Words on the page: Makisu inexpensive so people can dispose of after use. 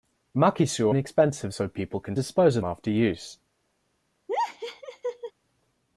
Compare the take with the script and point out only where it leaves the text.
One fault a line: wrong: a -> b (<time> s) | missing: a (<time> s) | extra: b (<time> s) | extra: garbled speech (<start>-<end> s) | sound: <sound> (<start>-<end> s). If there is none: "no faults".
sound: laugh (4.3-5.3 s)